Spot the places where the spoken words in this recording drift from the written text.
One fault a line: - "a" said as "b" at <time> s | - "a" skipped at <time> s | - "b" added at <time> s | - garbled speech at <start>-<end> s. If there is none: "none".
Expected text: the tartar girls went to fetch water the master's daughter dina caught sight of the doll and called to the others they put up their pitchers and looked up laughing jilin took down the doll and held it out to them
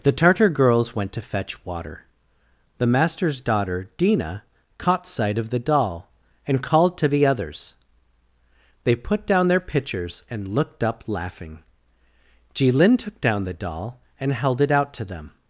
- "up" said as "down" at 9.3 s